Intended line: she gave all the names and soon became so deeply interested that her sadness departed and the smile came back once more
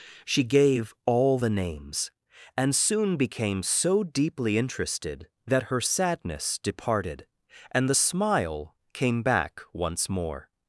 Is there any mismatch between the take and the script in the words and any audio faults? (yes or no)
no